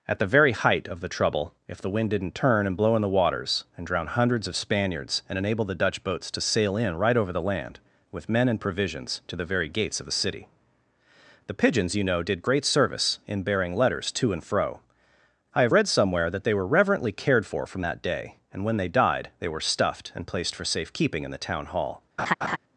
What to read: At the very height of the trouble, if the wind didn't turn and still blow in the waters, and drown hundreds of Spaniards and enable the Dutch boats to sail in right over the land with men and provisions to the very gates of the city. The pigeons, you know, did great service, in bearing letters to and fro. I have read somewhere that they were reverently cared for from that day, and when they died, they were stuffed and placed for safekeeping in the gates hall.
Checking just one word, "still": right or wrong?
wrong